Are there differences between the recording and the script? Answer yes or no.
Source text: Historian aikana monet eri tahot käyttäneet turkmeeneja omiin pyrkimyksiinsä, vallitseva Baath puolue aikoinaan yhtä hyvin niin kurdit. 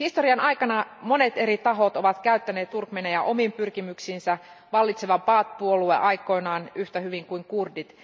yes